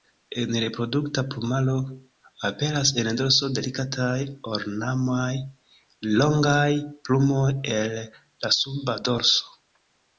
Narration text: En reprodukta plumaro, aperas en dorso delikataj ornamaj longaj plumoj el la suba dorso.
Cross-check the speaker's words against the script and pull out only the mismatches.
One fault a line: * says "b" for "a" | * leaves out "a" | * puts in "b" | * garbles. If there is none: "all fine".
all fine